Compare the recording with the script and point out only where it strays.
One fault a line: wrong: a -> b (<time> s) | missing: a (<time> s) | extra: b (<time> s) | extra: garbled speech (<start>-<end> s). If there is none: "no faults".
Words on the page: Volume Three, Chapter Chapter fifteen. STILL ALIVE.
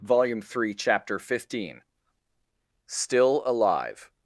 missing: Chapter (1.2 s)